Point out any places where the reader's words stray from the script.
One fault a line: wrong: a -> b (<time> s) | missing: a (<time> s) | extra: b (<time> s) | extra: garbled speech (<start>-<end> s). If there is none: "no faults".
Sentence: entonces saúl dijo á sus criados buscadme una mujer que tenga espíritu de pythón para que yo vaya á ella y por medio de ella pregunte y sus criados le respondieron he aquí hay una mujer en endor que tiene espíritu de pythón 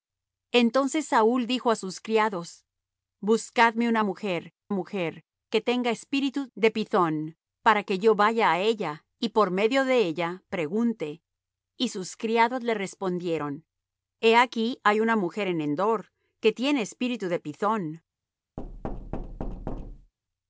extra: mujer (4.7 s)